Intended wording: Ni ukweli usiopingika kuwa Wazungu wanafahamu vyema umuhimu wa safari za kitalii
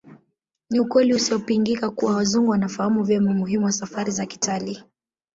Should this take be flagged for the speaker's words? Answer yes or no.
no